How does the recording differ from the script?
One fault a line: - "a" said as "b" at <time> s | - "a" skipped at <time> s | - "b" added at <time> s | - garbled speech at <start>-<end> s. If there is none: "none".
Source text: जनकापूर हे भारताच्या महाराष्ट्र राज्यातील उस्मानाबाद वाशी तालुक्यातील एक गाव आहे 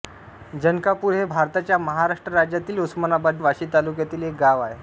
none